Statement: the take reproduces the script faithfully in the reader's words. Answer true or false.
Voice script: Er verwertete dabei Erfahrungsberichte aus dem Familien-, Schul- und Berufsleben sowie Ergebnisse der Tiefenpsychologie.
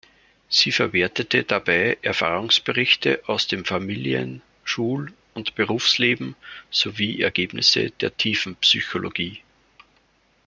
false